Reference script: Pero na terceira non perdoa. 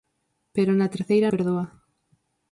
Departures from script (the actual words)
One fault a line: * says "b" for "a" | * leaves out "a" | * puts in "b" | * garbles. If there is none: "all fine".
* leaves out "non"